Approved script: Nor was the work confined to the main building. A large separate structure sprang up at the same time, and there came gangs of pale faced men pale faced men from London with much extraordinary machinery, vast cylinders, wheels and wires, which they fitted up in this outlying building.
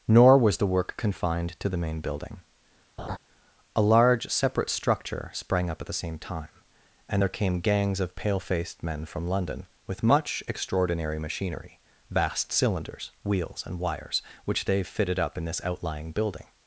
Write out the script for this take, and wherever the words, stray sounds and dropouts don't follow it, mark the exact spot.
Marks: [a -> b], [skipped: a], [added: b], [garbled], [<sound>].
Nor was the work confined to the main building. [laugh] A large separate structure sprang up at the same time, and there came gangs of pale faced men [skipped: pale faced men] from London with much extraordinary machinery, vast cylinders, wheels and wires, which they fitted up in this outlying building.